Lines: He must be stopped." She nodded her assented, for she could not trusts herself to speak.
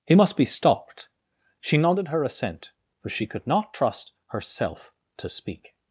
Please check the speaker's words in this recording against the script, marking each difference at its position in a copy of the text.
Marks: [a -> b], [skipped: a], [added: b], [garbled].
He must be stopped." She nodded her [assented, -> assent] for she could not [trusts -> trust] herself to speak.